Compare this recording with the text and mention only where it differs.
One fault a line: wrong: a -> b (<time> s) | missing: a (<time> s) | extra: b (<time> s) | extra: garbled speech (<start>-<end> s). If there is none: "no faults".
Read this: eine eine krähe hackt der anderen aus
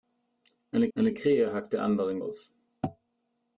no faults